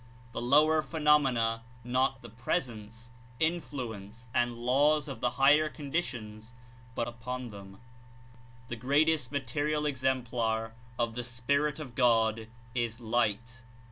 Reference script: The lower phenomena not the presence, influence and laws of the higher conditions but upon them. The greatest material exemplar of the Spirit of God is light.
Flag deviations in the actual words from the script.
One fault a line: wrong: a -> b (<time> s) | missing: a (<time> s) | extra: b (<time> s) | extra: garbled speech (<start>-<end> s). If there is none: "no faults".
no faults